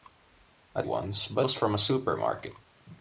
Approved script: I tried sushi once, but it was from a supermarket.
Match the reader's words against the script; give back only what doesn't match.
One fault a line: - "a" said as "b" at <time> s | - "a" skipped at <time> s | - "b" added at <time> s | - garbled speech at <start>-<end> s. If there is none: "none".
- "tried sushi" skipped at 0.8 s
- "it" skipped at 1.5 s